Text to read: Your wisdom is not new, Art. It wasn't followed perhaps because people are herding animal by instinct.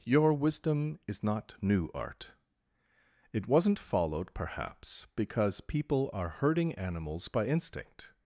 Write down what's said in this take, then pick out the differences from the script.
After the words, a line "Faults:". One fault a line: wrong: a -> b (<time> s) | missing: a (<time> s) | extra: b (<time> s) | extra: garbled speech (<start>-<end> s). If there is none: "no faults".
Your wisdom is not new, Art. It wasn't followed perhaps because people are herding animals by instinct.
Faults:
wrong: animal -> animals (6.7 s)